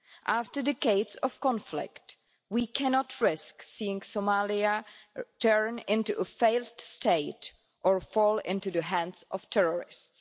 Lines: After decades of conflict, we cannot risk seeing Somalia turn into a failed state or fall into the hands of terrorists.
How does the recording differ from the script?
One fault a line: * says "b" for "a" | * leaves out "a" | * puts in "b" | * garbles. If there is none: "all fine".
all fine